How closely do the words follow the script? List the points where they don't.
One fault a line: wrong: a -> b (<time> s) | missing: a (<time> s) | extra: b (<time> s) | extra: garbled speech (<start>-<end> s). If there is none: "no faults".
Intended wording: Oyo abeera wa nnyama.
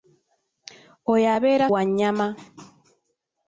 no faults